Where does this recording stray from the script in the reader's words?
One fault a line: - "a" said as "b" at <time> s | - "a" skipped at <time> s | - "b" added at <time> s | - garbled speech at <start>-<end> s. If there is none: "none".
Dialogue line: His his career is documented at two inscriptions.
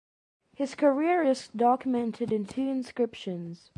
- "his" skipped at 0.8 s
- "at" said as "in" at 2.3 s